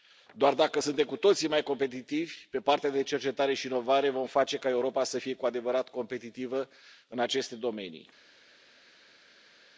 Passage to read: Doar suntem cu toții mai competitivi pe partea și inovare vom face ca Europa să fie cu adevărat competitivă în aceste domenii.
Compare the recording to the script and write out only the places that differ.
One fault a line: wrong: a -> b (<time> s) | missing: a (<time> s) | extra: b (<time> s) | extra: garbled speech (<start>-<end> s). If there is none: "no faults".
extra: dacă (0.5 s)
extra: de cercetare (2.9 s)